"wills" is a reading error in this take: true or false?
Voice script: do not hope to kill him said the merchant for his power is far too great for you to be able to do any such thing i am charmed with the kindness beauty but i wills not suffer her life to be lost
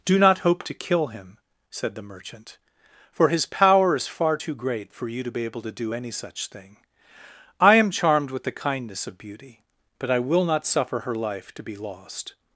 true